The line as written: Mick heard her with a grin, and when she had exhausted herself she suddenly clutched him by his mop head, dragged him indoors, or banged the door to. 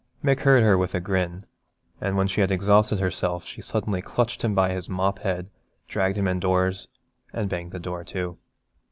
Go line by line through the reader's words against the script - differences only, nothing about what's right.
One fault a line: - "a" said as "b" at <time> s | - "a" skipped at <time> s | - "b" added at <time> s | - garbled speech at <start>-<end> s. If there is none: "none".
- "or" said as "and" at 7.3 s